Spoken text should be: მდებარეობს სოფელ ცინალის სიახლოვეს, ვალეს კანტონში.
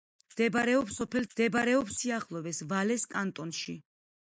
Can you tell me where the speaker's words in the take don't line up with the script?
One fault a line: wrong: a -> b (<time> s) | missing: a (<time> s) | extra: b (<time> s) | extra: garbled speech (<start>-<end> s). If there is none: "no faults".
wrong: ცინალის -> მდებარეობს (1.3 s)